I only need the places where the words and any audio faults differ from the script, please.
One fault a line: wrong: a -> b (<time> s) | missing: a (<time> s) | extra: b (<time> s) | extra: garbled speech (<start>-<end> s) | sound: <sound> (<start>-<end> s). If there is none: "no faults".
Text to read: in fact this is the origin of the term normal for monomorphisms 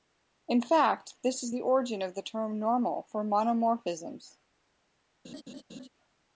sound: laugh (5.2-5.9 s)